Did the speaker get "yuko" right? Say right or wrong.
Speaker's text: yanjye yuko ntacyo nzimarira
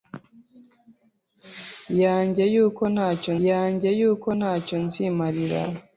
right